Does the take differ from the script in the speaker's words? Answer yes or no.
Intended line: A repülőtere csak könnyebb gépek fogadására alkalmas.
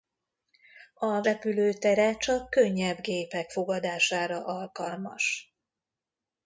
no